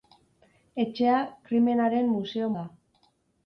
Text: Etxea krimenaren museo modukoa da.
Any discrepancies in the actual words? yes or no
yes